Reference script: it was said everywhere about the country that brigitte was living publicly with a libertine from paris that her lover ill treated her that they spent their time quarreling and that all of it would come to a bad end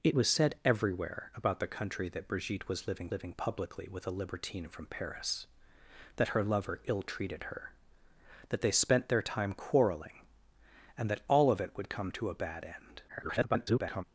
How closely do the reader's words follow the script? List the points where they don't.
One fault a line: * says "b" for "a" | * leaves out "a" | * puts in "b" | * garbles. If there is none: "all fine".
* puts in "living"
* garbles